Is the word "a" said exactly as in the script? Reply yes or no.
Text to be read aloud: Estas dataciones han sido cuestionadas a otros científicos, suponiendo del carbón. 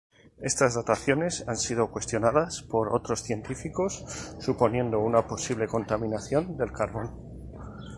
no